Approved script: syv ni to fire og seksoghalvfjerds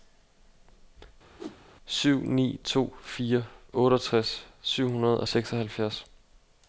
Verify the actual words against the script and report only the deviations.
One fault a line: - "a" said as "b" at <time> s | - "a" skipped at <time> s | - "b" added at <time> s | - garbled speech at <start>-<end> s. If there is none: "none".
- "otteogtres syv hundrede" added at 3.7 s